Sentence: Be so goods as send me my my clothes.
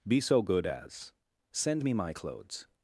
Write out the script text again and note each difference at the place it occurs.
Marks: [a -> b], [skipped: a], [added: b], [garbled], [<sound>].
Be so [goods -> good] as send me my [skipped: my] clothes.